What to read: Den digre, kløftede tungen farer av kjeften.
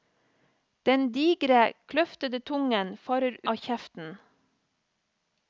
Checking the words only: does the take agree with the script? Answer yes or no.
yes